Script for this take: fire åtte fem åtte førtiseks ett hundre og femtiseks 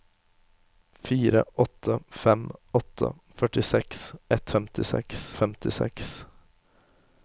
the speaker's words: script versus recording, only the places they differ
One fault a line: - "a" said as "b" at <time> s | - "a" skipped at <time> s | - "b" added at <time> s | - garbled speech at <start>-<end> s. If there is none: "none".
- "hundre" said as "femtiseks" at 4.5 s